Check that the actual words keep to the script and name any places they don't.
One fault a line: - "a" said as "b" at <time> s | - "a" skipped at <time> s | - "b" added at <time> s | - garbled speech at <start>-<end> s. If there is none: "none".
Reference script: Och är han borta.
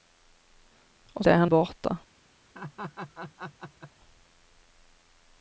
none